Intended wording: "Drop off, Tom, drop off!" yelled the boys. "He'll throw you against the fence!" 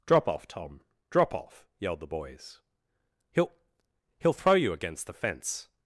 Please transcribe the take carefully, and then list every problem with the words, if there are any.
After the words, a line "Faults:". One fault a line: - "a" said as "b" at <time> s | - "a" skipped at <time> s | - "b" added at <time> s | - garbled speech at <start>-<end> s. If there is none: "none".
"Drop off, Tom, drop off!" yelled the boys. "He'll He'll throw you against the fence!"
Faults:
- "He'll" added at 4.2 s